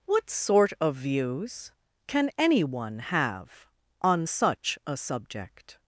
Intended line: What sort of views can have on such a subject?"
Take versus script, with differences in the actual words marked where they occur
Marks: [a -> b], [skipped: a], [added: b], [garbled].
What sort of views can [added: anyone] have on such a subject?"